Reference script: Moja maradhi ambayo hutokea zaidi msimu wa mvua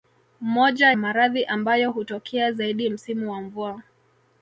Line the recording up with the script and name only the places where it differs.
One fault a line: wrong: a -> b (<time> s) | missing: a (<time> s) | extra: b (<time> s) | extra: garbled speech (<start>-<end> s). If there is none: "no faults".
no faults